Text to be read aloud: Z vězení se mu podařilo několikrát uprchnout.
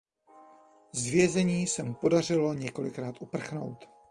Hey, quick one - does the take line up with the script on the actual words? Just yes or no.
yes